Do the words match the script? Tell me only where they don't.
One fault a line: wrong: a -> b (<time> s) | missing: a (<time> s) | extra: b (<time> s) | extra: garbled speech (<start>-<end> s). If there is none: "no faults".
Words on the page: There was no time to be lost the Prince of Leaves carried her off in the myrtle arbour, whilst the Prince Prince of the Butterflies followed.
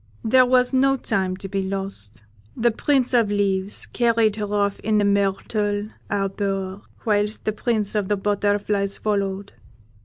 missing: Prince (8.0 s)